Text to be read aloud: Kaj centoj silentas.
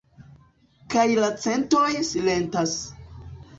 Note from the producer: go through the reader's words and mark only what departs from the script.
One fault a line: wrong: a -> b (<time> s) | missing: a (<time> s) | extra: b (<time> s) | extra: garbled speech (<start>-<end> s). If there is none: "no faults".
extra: la (1.2 s)